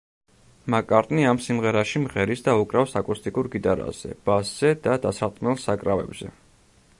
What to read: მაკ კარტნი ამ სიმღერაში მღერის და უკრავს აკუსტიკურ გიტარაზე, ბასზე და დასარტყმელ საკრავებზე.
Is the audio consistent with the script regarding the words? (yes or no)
yes